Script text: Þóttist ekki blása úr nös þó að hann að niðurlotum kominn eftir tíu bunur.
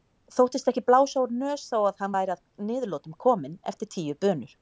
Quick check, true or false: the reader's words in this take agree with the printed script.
false